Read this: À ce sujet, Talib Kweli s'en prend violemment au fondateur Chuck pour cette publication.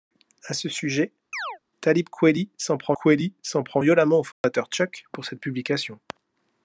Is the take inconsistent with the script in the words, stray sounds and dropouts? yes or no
yes